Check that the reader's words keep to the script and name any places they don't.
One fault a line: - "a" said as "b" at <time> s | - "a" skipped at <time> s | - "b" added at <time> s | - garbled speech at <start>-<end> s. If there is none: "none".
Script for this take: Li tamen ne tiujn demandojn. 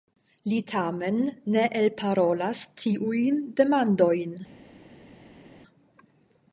- "elparolas" added at 1.8 s